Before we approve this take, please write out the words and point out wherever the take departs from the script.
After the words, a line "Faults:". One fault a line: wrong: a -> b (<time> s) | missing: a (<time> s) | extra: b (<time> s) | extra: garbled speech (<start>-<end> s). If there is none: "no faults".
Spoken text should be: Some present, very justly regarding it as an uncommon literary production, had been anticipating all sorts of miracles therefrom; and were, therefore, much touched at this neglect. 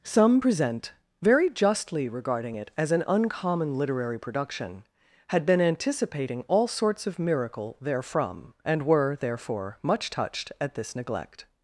Some present, very justly regarding it as an uncommon literary production, had been anticipating all sorts of miracle therefrom; and were, therefore, much touched at this neglect.
Faults:
wrong: miracles -> miracle (7.2 s)